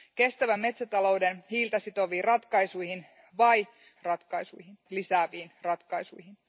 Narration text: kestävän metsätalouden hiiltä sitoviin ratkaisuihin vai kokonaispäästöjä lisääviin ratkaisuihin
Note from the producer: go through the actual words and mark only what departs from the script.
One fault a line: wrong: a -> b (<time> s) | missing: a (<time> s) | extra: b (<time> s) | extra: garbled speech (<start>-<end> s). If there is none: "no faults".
wrong: kokonaispäästöjä -> ratkaisuihin (4.0 s)